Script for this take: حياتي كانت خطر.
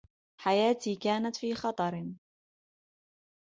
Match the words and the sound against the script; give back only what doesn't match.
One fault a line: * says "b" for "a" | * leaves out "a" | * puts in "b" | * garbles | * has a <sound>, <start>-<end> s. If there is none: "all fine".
* puts in "في"